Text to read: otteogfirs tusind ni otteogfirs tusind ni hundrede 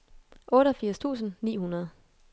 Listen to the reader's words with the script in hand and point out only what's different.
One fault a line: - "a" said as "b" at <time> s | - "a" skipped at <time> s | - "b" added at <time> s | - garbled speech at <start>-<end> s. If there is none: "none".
- "otteogfirs tusind ni" skipped at 1.6 s